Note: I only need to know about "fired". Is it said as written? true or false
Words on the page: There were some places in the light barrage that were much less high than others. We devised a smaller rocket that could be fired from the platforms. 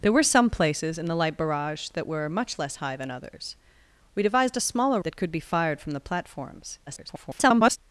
true